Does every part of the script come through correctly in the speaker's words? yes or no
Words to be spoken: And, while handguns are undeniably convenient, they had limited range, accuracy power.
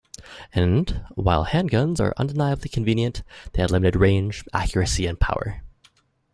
no